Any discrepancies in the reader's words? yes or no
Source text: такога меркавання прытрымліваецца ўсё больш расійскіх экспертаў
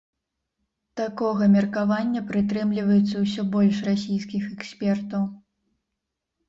no